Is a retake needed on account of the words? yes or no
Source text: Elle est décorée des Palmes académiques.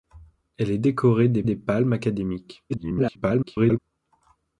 yes